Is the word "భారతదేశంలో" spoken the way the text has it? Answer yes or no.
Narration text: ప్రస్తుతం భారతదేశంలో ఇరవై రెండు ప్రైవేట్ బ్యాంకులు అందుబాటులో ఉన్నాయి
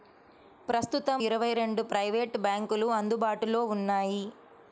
no